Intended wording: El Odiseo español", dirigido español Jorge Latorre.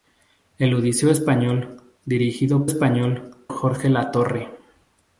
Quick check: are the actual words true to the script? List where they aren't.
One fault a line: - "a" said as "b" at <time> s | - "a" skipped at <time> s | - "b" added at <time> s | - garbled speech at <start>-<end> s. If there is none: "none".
none